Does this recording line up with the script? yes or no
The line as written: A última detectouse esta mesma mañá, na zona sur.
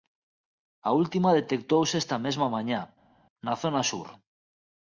yes